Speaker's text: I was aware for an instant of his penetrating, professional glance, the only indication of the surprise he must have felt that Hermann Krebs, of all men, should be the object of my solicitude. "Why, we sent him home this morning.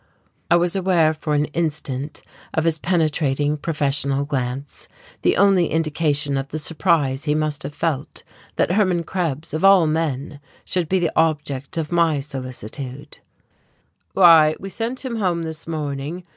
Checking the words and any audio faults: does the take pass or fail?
pass